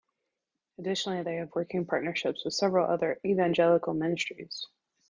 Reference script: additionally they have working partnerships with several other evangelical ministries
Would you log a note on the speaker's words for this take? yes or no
no